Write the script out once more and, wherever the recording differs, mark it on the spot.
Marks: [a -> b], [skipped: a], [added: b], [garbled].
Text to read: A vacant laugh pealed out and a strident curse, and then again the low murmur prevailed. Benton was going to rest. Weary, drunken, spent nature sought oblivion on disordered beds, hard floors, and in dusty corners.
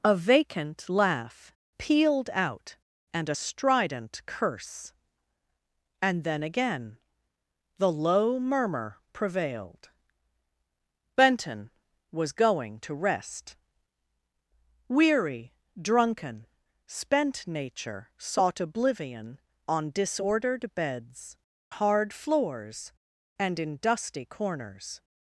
A vacant laugh pealed out and a strident curse, and then again the low murmur prevailed. Benton was going to rest. Weary, drunken, spent nature sought oblivion on disordered beds, hard floors, and in dusty corners.